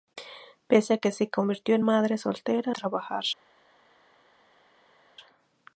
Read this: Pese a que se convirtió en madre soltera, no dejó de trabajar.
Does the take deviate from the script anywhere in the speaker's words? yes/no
yes